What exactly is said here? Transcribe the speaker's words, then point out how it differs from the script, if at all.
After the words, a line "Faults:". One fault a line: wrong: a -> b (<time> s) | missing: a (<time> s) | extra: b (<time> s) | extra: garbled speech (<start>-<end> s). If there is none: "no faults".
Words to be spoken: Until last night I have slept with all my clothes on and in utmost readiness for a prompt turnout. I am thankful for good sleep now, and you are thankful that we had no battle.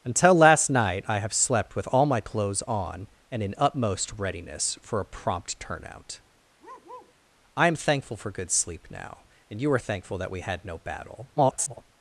Until last night I have slept with all my clothes on and in utmost readiness for a prompt turnout. I am thankful for good sleep now, and you are thankful that we had no battle. [garbled]
Faults:
extra: garbled speech (11.4-11.9 s)